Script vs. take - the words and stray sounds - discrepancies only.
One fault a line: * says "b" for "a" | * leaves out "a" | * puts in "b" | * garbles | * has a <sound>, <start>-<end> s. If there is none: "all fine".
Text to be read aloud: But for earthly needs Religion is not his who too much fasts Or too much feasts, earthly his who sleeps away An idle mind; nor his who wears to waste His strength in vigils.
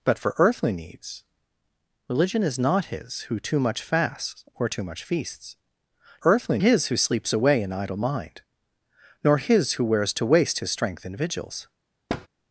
* has a thud, 12.1-12.3 s